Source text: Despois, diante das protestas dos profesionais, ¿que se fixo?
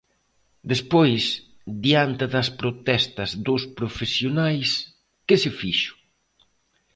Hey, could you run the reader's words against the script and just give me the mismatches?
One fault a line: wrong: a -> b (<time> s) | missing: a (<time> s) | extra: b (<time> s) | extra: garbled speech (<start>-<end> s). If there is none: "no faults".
no faults